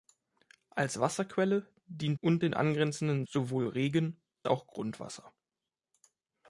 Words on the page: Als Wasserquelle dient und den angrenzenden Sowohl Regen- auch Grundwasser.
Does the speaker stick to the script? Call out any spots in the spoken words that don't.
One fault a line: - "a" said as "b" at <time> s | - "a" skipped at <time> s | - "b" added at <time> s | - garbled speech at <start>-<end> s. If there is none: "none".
none